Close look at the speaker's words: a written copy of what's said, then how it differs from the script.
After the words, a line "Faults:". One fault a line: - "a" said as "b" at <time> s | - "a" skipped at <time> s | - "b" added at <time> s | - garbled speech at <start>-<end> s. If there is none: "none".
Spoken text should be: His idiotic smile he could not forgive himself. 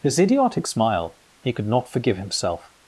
His idiotic smile he could not forgive himself.
Faults:
none